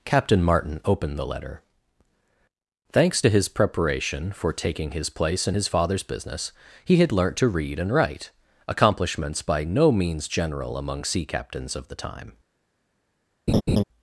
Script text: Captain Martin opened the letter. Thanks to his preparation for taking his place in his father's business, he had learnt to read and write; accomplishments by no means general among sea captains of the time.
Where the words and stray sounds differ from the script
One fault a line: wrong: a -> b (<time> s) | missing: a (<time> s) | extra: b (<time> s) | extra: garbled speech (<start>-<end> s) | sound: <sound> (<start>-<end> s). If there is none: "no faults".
sound: laugh (13.5-13.8 s)